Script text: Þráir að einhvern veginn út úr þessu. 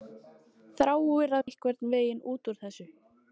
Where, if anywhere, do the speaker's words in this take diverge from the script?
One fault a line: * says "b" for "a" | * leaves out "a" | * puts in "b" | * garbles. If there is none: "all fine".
all fine